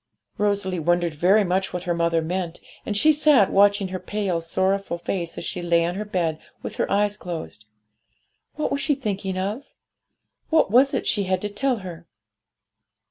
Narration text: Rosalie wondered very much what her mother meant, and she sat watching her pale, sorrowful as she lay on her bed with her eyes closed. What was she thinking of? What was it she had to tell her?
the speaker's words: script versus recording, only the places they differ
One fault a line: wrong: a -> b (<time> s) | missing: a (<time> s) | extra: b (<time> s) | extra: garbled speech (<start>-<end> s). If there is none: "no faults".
extra: face (5.0 s)